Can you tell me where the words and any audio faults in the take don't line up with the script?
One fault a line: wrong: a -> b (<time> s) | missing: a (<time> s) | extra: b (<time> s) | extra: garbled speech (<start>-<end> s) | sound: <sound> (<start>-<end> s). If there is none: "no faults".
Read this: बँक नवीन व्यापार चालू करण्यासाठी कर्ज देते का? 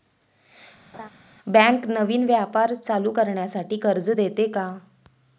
sound: laugh (0.9-1.1 s)